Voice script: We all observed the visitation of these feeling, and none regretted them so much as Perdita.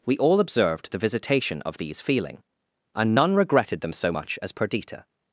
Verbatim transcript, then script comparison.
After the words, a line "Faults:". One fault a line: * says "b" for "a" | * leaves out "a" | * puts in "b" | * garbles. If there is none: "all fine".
We all observed the visitation of these feeling, and none regretted them so much as Perdita.
Faults:
all fine